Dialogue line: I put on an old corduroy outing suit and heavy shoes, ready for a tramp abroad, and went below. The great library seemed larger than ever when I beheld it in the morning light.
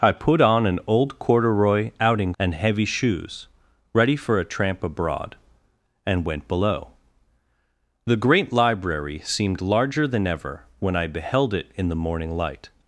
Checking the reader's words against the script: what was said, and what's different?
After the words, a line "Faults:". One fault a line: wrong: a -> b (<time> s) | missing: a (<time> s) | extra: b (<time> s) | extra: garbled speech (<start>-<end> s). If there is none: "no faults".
I put on an old corduroy outing and heavy shoes, ready for a tramp abroad, and went below. The great library seemed larger than ever when I beheld it in the morning light.
Faults:
missing: suit (2.3 s)